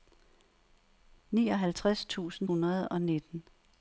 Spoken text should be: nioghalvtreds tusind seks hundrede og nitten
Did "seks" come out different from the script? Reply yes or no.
yes